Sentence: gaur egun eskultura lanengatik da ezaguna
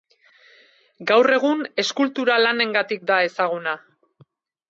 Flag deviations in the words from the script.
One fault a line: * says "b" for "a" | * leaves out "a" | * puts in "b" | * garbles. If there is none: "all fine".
all fine